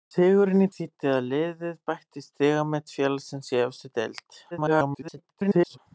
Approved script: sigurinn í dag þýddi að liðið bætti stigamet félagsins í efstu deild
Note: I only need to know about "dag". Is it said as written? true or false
false